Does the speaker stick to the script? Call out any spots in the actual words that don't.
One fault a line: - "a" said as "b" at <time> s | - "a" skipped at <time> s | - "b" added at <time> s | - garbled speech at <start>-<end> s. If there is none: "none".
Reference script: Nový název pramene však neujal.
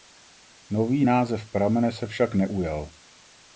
- "se" added at 1.9 s